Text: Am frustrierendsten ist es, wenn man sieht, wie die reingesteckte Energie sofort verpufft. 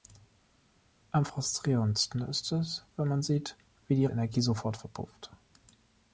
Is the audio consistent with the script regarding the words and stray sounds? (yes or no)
no